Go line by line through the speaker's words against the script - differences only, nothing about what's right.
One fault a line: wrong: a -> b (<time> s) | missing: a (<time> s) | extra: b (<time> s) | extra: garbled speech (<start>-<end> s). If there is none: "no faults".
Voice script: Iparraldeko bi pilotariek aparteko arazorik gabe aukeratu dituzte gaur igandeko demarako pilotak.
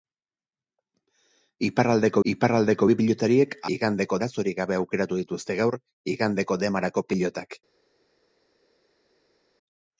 extra: iparraldeko (2.3 s)
wrong: aparteko -> igandeko (3.8 s)